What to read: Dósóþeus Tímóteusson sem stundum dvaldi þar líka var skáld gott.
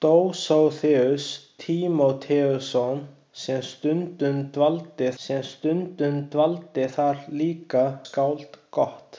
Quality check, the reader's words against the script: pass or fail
fail